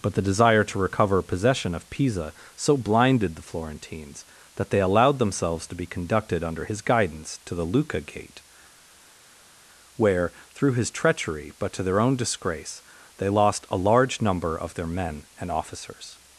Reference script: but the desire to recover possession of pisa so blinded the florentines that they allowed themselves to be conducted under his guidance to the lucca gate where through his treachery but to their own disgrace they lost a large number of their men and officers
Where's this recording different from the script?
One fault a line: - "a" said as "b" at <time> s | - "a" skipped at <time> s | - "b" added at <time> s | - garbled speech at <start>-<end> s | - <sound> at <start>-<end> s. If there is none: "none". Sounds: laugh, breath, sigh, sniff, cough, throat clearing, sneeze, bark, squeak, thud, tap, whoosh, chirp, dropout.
none